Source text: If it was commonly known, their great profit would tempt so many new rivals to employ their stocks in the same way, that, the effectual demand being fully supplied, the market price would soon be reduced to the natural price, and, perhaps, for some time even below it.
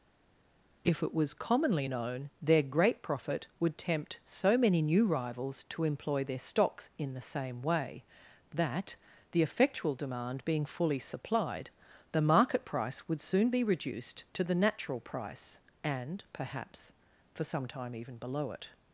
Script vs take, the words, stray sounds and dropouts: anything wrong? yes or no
no